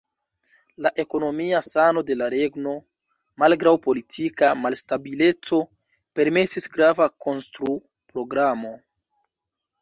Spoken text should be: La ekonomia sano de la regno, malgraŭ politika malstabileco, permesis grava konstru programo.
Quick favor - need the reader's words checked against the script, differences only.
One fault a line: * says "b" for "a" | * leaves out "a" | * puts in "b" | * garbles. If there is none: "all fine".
all fine